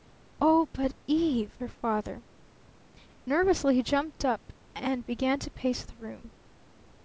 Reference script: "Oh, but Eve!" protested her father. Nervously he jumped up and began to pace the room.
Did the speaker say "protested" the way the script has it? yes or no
no